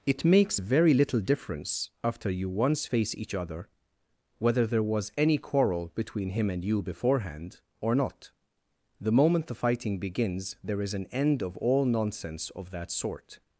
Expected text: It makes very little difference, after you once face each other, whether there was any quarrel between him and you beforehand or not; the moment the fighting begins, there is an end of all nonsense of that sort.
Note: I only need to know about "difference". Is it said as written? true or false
true